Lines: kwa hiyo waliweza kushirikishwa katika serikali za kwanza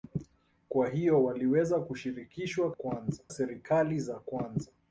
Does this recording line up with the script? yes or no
no